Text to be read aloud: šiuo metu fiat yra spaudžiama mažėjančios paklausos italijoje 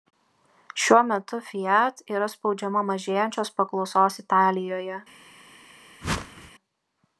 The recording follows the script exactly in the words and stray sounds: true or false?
false